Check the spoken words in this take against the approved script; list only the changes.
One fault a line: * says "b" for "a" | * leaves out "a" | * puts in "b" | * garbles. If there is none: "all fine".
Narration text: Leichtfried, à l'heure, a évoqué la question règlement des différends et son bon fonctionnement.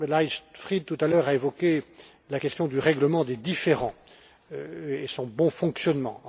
* puts in "tout"
* puts in "du"